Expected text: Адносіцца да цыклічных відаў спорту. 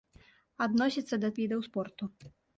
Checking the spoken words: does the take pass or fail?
fail